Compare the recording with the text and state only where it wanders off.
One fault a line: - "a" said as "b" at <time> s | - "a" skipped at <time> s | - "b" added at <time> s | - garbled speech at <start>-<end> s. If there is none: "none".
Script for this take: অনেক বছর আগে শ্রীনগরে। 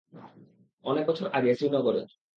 none